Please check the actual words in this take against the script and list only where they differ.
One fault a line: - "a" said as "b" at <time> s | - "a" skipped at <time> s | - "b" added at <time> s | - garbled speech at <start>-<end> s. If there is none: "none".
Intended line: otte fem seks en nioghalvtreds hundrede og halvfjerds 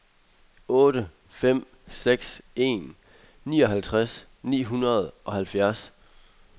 - "ni" added at 4.4 s